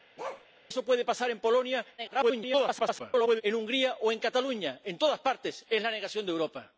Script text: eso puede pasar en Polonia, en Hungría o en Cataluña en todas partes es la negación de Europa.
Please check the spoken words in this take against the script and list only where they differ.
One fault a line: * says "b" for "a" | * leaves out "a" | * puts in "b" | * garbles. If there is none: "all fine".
* garbles